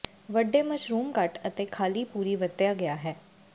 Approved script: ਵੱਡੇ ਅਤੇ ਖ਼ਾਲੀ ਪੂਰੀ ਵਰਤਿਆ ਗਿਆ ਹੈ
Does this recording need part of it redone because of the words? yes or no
yes